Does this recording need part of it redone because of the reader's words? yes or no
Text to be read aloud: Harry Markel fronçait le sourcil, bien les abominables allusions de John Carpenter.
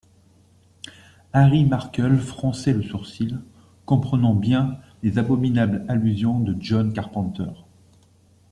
yes